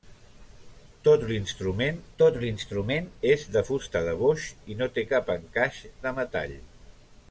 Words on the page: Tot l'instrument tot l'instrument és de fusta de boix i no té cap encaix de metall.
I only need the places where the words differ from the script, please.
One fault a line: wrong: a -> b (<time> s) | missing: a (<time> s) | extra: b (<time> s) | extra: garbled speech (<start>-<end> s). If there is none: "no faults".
no faults